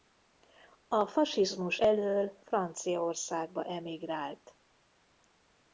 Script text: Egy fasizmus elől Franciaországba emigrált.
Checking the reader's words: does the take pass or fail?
fail